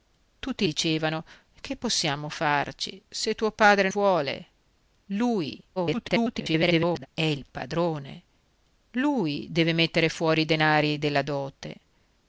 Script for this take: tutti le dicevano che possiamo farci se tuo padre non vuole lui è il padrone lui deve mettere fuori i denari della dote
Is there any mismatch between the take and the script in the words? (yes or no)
yes